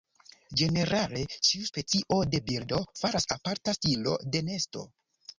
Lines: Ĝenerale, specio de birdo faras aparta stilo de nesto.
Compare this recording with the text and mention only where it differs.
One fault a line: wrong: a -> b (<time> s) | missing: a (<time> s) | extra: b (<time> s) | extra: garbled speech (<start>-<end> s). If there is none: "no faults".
extra: ĉiu (1.5 s)